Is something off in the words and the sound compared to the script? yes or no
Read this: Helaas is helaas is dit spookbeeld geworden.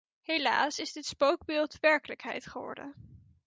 yes